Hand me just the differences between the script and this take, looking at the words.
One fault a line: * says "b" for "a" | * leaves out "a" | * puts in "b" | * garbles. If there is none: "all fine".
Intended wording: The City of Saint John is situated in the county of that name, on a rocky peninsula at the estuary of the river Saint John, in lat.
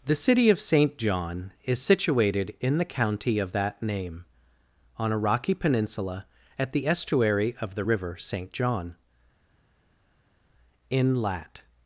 all fine